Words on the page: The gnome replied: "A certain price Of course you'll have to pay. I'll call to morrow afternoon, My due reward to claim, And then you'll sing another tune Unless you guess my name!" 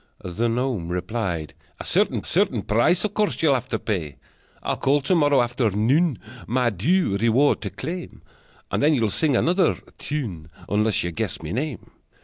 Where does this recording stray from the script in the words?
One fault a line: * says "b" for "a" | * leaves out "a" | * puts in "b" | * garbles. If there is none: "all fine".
* puts in "certain"